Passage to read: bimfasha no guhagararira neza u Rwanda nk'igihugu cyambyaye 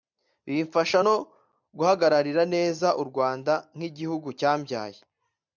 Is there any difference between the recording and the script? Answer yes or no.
no